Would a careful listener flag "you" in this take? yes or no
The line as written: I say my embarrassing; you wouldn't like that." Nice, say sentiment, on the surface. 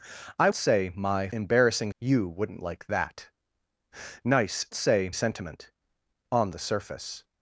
no